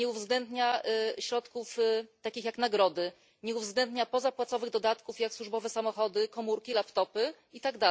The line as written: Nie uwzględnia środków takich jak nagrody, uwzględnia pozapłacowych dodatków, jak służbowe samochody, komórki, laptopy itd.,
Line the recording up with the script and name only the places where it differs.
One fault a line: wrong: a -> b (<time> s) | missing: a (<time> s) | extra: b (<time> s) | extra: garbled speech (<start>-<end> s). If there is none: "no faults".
extra: nie (3.4 s)